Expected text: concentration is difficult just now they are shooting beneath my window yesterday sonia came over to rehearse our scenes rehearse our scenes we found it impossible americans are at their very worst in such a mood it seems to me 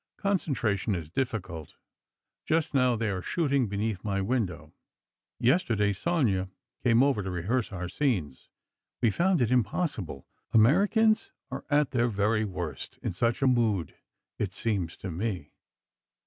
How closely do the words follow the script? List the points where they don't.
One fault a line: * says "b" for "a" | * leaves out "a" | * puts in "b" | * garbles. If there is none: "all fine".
* leaves out "rehearse our scenes"